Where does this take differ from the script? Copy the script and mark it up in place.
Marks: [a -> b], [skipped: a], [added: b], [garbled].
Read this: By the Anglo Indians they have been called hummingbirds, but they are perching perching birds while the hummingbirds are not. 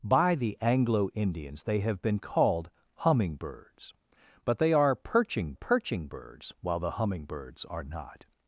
By the Anglo Indians they have been called hummingbirds, but they are perching perching birds while the hummingbirds are not.